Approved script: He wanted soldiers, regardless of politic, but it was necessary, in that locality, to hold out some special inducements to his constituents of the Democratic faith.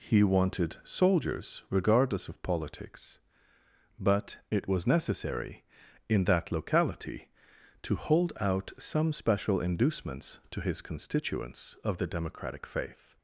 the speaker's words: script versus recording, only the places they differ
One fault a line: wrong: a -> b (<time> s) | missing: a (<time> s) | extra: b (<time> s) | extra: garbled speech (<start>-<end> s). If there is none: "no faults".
wrong: politic -> politics (2.4 s)